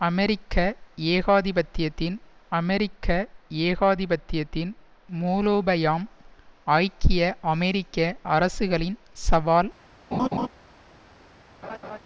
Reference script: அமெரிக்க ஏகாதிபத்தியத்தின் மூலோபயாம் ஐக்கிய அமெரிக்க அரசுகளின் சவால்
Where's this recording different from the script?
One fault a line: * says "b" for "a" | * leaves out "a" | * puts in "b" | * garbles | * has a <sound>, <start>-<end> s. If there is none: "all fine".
* puts in "அமெரிக்க ஏகாதிபத்தியத்தின்"
* has a laugh, 10.1-10.5 s
* has a laugh, 11.6-12.0 s